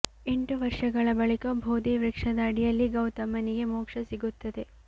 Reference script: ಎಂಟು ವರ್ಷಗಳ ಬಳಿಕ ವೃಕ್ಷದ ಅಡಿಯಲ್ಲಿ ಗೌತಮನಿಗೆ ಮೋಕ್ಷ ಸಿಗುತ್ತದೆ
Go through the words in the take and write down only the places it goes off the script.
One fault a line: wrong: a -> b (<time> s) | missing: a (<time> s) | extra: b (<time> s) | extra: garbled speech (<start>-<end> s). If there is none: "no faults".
extra: ಬೋಧಿ (1.6 s)